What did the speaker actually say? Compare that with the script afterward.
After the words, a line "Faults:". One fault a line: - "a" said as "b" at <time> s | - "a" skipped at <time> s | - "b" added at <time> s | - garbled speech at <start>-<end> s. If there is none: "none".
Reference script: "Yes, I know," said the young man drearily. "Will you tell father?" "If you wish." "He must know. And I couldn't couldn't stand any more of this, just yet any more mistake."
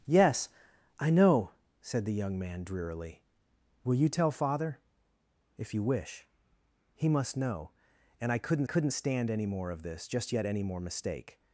"Yes, I know," said the young man drearily. "Will you tell father?" "If you wish." "He must know. And I couldn't couldn't stand any more of this, just yet any more mistake."
Faults:
none